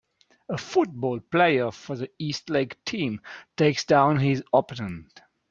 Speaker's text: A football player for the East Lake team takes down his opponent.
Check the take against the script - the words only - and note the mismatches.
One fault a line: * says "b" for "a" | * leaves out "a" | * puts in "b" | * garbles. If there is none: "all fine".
all fine